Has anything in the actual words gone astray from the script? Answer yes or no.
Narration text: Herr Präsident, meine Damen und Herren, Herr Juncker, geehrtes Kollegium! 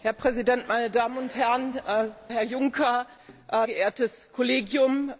no